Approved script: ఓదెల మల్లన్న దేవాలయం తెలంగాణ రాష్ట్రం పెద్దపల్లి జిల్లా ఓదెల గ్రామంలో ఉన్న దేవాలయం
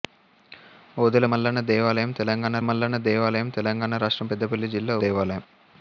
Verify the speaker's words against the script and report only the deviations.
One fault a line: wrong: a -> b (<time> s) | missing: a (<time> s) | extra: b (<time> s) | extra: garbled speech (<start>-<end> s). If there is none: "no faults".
extra: మల్లన్న దేవాలయం తెలంగాణ (2.6 s)
missing: ఓదెల గ్రామంలో ఉన్న (5.0 s)